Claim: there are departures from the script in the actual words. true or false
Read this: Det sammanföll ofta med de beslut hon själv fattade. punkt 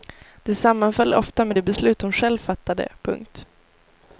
false